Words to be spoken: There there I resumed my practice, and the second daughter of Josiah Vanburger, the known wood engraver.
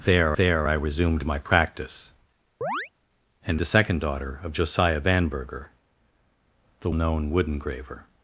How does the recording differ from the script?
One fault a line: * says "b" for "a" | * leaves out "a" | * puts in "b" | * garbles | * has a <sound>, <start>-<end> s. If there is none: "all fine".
* has a chirp, 2.6-2.9 s